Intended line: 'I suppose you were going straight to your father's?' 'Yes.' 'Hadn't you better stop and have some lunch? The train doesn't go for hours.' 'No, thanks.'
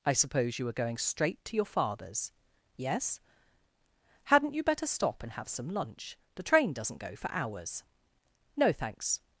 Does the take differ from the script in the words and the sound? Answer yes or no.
no